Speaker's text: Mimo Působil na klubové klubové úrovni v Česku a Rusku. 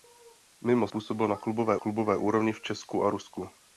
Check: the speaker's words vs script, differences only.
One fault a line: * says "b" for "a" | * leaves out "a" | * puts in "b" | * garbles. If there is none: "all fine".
all fine